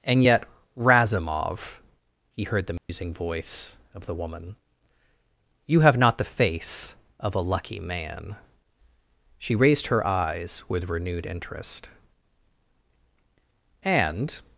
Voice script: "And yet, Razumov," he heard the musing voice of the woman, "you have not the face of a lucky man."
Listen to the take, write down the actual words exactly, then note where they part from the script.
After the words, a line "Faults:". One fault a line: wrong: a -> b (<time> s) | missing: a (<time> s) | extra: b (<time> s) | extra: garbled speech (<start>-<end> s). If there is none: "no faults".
"And yet, Razumov," he heard the musing voice of the woman, "you have not the face of a lucky man." She raised her eyes with renewed interest. "And
Faults:
extra: She raised her eyes with renewed interest And (9.4 s)